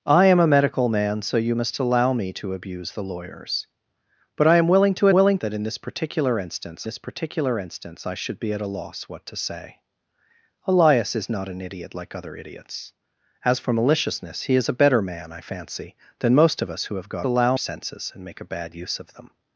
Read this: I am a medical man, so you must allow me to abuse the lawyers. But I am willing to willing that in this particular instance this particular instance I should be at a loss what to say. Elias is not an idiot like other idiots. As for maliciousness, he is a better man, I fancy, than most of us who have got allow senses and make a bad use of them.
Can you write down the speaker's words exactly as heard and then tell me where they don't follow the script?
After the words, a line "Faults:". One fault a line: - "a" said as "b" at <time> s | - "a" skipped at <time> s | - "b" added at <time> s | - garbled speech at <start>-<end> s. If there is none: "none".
I am a medical man, so you must allow me to abuse the lawyers. But I am willing to willing that in this particular instance this particular instance I should be at a loss what to say. Elias is not an idiot like other idiots. As for maliciousness, he is a better man, I fancy, than most of us who have got allow senses and make a bad use of them.
Faults:
none